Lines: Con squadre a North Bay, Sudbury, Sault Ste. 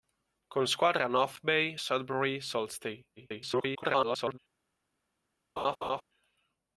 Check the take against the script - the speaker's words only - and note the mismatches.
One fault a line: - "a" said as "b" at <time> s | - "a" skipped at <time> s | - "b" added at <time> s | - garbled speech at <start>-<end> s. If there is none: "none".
- garbled speech at 3.2-4.4 s